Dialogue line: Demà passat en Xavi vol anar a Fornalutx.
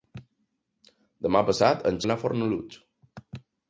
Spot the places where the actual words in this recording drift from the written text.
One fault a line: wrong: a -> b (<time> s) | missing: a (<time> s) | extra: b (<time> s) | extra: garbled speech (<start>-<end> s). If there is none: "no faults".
missing: Xavi vol (2.0 s)